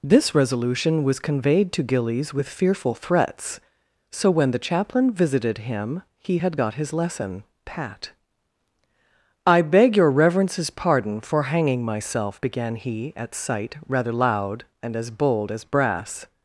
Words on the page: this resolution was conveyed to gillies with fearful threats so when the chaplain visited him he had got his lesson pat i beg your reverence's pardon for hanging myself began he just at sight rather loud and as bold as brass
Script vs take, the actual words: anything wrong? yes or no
yes